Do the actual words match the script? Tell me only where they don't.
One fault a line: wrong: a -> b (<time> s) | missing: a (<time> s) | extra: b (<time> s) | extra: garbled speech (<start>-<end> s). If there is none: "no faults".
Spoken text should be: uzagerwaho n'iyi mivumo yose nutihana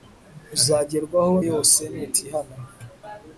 missing: n'iyi mivumo (1.4 s)